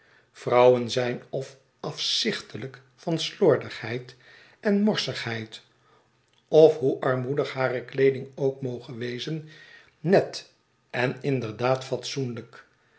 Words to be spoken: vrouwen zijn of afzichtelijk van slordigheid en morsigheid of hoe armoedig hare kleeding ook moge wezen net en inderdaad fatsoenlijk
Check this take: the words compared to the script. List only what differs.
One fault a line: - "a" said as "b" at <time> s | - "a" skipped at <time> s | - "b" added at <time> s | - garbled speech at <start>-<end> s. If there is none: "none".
none